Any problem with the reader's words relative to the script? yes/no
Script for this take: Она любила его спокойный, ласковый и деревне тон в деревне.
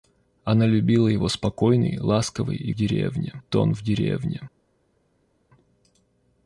no